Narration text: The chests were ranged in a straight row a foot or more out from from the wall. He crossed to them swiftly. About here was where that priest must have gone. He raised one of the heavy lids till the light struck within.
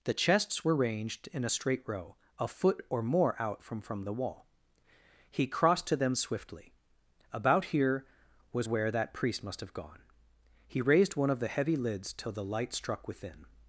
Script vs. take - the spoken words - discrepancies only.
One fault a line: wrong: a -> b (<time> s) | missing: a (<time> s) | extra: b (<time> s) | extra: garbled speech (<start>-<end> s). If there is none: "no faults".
no faults